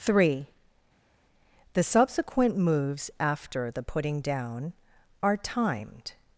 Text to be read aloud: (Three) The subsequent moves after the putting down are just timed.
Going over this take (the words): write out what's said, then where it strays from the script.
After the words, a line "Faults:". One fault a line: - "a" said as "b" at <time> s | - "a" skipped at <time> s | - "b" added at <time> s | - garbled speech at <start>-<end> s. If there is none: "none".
(Three) The subsequent moves after the putting down are timed.
Faults:
- "just" skipped at 5.4 s